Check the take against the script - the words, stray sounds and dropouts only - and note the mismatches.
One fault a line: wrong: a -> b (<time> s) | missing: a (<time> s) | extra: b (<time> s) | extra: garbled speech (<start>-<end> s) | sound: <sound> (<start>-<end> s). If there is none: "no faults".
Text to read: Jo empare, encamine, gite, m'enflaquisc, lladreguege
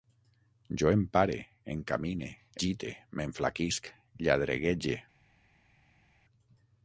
no faults